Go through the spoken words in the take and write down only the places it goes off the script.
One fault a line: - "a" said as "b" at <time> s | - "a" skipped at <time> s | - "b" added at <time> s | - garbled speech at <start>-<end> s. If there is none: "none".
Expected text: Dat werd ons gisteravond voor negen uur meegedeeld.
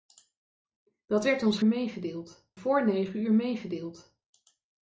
- "gisteravond" said as "meegedeeld" at 1.6 s